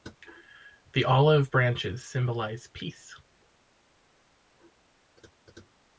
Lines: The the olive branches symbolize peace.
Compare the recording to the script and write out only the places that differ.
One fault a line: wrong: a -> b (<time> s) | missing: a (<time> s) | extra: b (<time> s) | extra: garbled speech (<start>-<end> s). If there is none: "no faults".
missing: the (1.1 s)